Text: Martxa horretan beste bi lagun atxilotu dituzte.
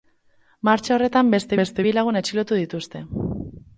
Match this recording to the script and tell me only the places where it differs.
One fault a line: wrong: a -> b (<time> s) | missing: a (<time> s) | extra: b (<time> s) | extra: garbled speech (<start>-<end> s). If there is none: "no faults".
extra: beste (1.6 s)